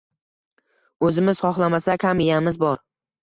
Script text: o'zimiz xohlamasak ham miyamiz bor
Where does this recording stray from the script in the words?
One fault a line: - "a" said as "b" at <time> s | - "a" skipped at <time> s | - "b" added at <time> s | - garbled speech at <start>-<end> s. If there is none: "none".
none